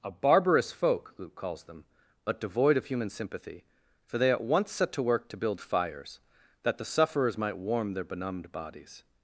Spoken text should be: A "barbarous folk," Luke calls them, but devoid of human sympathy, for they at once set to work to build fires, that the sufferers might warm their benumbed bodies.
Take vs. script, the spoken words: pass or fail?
pass